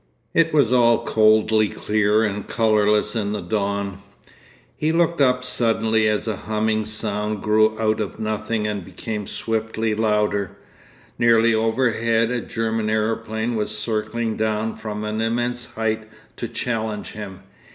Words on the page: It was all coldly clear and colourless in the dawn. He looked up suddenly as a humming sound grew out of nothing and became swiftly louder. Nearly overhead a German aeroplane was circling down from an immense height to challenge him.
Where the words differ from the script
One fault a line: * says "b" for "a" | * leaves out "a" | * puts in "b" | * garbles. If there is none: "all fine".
all fine